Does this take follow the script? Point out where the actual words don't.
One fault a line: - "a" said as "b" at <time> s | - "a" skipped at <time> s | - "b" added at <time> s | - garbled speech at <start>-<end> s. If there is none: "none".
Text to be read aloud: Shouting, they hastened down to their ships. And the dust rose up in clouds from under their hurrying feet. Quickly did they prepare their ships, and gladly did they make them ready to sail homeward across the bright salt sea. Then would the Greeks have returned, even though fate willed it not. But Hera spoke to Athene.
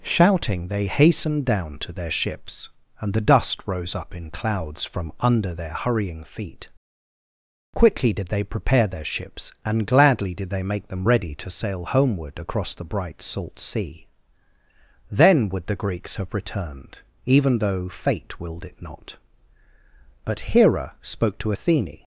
none